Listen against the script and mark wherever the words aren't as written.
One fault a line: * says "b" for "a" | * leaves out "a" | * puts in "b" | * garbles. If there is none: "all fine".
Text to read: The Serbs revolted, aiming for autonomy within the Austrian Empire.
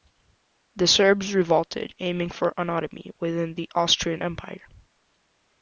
all fine